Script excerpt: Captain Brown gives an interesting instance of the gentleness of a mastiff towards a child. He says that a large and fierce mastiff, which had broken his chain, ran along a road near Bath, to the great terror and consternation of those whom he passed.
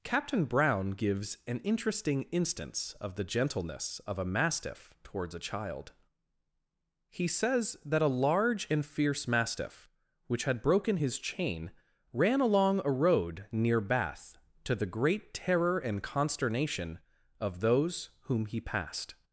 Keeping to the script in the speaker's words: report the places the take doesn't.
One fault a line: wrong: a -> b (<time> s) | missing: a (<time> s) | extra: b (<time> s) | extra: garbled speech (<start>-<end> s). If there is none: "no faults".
no faults